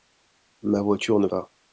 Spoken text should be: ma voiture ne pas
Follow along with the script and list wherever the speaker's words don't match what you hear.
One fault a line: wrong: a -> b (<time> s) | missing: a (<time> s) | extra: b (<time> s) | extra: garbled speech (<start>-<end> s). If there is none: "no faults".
no faults